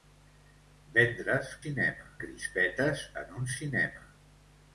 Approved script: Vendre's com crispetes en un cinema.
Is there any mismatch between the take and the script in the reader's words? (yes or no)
yes